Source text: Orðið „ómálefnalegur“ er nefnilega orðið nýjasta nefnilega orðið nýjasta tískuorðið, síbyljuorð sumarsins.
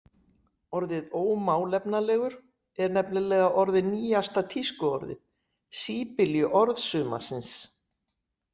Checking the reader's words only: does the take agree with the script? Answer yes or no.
no